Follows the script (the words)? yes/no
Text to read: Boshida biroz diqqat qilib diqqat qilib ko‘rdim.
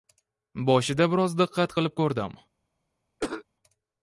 no